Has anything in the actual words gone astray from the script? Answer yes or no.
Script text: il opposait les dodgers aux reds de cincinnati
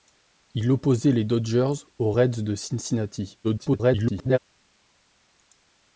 yes